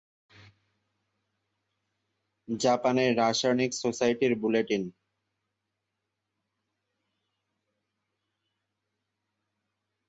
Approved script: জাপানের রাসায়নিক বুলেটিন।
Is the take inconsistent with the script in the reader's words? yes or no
yes